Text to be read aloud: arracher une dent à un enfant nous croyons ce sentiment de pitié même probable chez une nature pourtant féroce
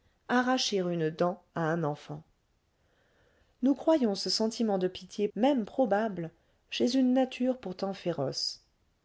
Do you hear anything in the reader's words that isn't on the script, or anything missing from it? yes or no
no